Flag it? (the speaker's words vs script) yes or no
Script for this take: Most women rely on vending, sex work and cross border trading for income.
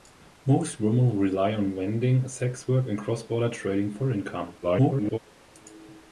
yes